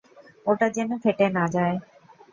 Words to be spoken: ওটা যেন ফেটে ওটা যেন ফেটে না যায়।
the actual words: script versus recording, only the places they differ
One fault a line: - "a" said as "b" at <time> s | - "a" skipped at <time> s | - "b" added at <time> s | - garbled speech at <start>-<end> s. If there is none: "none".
- "ওটা যেন ফেটে" skipped at 1.3 s